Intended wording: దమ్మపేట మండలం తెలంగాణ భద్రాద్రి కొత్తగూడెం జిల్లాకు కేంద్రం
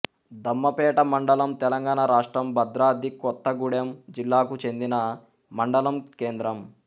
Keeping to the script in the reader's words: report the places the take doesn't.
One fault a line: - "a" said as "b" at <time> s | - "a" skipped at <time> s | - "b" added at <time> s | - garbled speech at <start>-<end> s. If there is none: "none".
- "రాష్ట్రం" added at 2.0 s
- "చెందిన మండలం" added at 4.6 s